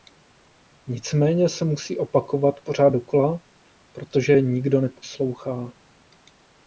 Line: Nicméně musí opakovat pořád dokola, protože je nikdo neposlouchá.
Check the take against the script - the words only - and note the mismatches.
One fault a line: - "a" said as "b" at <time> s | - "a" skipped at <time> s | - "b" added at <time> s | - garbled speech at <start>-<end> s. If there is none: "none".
- "se" added at 1.5 s